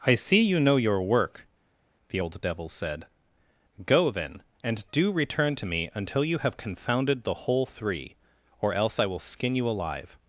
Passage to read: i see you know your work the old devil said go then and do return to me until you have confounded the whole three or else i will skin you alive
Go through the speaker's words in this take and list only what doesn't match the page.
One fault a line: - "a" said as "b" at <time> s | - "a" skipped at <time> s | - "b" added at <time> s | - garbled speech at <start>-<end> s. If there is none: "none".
none